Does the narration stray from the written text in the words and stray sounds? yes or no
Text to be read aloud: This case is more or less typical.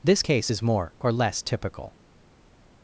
no